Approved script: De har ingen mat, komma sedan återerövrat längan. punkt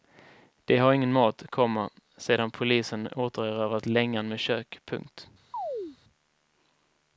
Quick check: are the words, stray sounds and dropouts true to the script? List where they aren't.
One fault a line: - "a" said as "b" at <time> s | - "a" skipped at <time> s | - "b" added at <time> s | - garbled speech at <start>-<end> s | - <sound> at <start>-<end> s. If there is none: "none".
- "polisen" added at 2.5 s
- "med kök" added at 4.3 s
- chirp at 5.5-6.0 s